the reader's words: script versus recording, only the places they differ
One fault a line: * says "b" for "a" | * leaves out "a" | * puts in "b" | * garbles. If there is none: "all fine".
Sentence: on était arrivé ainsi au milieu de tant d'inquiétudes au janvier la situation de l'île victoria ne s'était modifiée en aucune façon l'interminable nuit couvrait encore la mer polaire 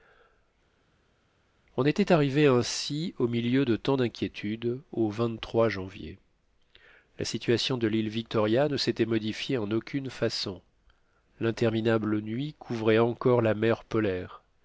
all fine